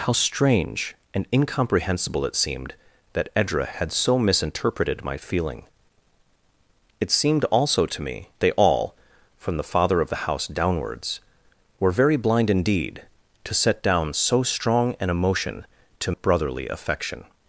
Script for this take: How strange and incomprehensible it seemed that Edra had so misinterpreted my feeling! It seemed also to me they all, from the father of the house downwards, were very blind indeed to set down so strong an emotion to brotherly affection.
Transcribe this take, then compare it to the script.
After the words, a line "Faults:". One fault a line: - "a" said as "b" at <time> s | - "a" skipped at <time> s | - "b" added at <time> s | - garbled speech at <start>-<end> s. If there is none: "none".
How strange and incomprehensible it seemed that Edra had so misinterpreted my feeling! It seemed also to me they all, from the father of the house downwards, were very blind indeed to set down so strong an emotion to brotherly affection.
Faults:
none